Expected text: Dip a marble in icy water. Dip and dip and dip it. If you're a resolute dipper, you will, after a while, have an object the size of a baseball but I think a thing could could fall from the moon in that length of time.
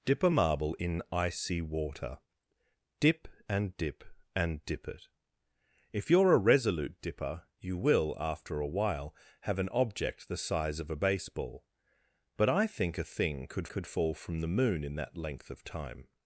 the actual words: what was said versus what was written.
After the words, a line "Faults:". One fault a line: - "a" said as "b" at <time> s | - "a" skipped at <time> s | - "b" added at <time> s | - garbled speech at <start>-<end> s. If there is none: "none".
Dip a marble in icy water. Dip and dip and dip it. If you're a resolute dipper, you will, after a while, have an object the size of a baseball but I think a thing could could fall from the moon in that length of time.
Faults:
none